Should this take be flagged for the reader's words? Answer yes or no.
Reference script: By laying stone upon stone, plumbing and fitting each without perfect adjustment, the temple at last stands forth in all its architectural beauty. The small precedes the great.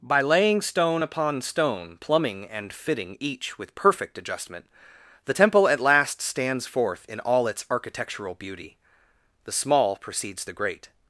yes